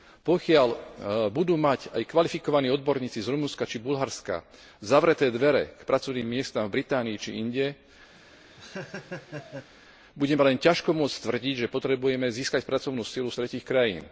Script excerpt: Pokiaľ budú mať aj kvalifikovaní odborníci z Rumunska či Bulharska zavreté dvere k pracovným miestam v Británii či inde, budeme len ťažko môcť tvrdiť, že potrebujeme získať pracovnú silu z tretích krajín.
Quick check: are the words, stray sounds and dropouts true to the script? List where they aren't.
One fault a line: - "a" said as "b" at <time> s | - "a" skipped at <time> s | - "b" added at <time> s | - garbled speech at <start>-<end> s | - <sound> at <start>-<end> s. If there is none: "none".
- laugh at 8.2-9.7 s